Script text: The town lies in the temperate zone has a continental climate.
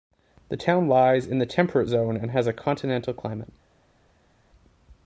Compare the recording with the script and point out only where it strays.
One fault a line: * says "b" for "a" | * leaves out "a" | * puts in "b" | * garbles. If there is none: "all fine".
* puts in "and"